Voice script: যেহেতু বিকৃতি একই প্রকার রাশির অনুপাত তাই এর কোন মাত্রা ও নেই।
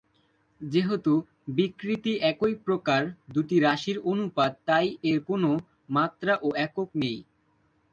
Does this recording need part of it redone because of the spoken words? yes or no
yes